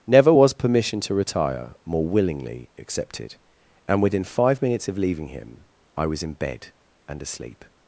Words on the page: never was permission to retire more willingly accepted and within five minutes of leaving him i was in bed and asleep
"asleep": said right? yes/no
yes